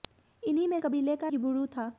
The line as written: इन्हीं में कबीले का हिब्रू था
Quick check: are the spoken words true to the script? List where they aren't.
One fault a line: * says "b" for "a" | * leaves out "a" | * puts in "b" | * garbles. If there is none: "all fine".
all fine